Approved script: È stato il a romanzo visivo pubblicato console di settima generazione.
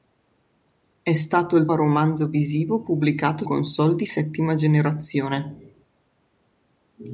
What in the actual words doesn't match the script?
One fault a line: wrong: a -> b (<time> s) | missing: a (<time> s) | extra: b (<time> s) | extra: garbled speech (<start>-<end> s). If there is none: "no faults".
no faults